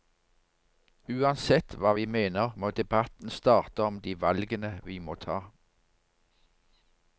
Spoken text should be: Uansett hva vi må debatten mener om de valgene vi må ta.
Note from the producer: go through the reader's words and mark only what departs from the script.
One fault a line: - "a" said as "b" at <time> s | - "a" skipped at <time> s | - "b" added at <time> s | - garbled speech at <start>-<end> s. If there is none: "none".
- "mener" added at 2.2 s
- "mener" said as "starte" at 3.4 s